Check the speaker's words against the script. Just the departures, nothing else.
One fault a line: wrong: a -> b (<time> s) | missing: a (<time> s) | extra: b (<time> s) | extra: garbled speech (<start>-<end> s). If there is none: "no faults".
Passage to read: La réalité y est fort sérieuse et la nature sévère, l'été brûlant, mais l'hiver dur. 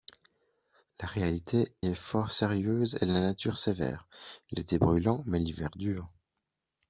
missing: y (1.8 s)